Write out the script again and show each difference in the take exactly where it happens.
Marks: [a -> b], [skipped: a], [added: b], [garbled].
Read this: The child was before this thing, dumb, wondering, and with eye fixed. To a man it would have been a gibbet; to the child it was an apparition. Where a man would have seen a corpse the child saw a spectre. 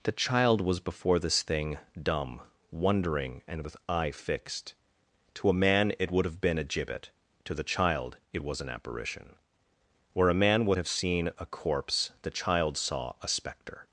The child was before this thing, dumb, wondering, and with eye fixed. To a man it would have been a gibbet; to the child it was an apparition. Where a man would have seen a corpse the child saw a spectre.